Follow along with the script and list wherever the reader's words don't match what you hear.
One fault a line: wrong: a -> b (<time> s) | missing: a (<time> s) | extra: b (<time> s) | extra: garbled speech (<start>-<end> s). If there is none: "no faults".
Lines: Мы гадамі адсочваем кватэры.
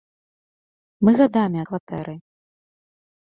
missing: адсочваем (1.6 s)